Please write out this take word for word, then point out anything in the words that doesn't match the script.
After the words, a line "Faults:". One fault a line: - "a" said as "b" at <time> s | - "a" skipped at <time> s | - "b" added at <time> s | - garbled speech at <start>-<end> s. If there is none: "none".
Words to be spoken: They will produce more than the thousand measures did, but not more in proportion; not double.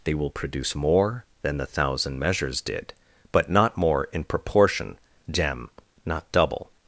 They will produce more than the thousand measures did, but not more in proportion; gem not double.
Faults:
- "gem" added at 5.3 s